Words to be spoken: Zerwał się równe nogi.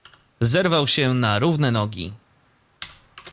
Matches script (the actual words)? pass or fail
fail